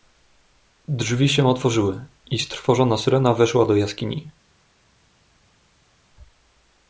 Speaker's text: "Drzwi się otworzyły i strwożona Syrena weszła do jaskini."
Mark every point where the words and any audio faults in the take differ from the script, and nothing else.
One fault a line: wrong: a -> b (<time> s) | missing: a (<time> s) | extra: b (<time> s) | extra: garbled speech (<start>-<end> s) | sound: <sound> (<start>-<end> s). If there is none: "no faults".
no faults